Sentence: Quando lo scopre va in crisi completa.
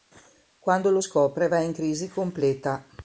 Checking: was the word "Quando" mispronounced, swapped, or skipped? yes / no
no